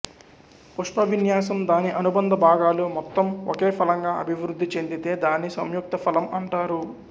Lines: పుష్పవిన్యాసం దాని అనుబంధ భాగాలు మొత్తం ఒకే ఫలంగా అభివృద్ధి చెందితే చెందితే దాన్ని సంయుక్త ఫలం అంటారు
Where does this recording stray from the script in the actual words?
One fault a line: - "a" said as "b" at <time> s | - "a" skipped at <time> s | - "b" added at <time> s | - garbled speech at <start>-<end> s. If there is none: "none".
- "చెందితే" skipped at 5.1 s